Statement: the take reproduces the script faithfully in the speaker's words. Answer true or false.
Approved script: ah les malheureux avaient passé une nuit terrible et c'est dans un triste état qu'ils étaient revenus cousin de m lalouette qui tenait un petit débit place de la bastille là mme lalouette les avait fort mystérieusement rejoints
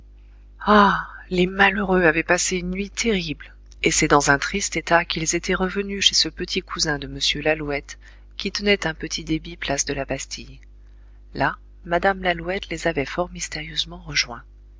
false